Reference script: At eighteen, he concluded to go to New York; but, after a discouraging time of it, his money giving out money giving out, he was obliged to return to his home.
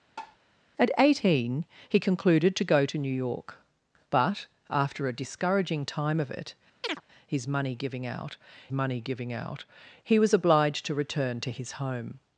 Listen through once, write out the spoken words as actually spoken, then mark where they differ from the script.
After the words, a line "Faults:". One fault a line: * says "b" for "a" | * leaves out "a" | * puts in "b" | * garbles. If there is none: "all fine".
At eighteen, he concluded to go to New York; but, after a discouraging time of it, his money giving out money giving out, he was obliged to return to his home.
Faults:
all fine